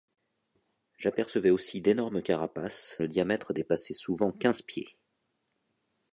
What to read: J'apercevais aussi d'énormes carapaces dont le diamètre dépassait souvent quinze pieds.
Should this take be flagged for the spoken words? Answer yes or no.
yes